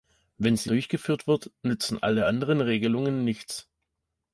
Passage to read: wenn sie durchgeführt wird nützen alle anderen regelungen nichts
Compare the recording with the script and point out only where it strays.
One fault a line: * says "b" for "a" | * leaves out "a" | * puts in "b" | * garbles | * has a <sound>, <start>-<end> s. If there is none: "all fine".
all fine